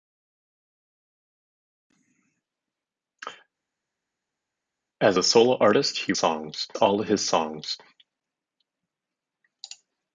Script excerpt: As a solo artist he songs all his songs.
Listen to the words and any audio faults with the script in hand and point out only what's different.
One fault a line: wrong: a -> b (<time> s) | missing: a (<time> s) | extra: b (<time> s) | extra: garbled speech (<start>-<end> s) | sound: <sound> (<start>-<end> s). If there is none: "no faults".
no faults